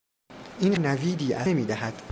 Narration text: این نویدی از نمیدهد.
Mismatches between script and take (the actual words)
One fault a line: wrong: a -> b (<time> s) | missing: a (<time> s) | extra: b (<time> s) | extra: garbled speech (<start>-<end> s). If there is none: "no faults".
no faults